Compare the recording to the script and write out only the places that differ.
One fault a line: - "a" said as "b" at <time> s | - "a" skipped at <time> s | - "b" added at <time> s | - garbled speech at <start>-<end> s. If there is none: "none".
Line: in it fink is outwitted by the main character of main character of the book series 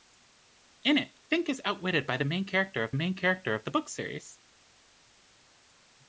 none